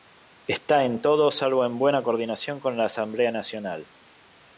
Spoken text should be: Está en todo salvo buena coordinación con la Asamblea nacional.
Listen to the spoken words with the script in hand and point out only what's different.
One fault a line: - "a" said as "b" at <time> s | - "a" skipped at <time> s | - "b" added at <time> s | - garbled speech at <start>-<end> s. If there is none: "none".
- "en" added at 1.6 s